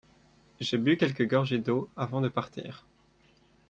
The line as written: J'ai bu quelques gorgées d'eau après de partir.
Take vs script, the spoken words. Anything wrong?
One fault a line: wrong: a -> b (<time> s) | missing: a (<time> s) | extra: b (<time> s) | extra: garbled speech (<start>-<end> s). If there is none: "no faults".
wrong: après -> avant (2.0 s)